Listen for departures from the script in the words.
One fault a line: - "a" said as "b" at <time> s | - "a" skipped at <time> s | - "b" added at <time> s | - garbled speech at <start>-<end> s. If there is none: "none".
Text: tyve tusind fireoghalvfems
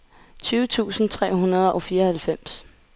- "tre hundrede og" added at 1.1 s